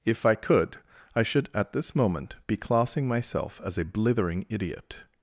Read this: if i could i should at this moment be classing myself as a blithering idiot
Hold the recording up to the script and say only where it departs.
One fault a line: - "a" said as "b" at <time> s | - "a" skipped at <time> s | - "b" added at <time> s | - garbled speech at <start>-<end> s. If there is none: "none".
none